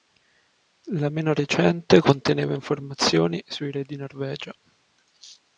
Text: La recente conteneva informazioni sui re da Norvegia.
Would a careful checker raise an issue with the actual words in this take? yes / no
yes